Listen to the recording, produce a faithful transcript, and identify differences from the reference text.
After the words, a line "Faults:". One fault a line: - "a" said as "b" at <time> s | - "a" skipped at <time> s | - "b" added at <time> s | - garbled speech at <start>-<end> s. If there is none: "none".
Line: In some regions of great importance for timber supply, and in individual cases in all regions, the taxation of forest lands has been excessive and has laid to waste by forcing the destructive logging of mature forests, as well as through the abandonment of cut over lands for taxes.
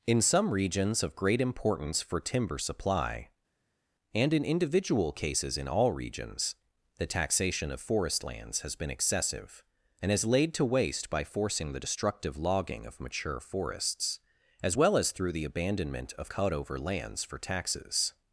In some regions of great importance for timber supply, and in individual cases in all regions, the taxation of forest lands has been excessive and has laid to waste by forcing the destructive logging of mature forests, as well as through the abandonment of cut over lands for taxes.
Faults:
none